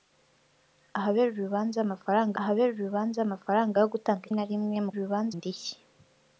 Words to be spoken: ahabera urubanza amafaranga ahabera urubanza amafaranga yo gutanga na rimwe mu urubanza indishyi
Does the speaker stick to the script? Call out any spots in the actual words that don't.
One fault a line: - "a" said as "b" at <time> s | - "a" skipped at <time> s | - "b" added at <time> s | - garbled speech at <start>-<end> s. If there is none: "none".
none